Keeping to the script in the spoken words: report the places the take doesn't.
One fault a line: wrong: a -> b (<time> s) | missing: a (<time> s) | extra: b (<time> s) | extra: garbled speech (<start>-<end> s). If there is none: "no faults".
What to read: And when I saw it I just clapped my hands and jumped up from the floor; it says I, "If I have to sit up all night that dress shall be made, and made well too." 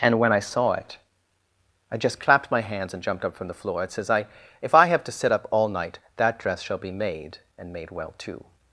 no faults